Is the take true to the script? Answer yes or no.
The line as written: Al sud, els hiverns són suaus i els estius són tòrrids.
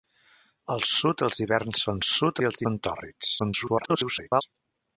no